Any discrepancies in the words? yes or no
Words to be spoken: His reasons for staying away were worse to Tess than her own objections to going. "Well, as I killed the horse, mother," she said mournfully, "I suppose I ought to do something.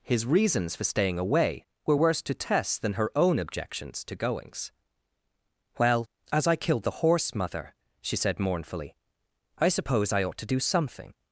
yes